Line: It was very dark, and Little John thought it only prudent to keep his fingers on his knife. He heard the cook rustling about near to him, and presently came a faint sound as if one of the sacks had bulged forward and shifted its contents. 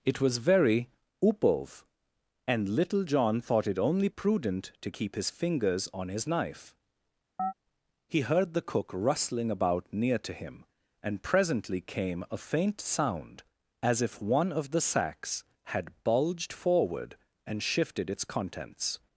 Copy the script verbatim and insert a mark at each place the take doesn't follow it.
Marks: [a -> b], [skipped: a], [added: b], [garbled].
It was very [dark, -> upov] and Little John thought it only prudent to keep his fingers on his knife. He heard the cook rustling about near to him, and presently came a faint sound as if one of the sacks had bulged forward and shifted its contents.